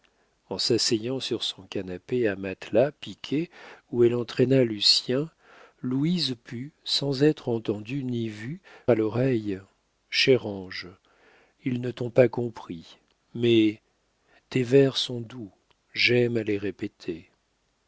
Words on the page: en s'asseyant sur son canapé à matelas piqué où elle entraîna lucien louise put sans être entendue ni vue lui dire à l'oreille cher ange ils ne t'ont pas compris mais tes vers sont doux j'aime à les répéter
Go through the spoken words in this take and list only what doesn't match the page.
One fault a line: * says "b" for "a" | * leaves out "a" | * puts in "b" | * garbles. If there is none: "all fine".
* leaves out "lui dire"